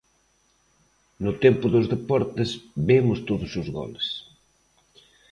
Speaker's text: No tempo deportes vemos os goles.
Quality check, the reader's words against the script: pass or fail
fail